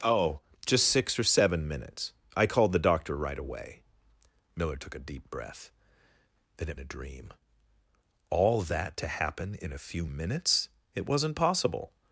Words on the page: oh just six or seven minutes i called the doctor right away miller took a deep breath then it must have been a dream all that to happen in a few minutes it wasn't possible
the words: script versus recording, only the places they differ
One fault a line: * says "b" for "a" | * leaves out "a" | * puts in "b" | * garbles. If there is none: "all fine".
* leaves out "must have been"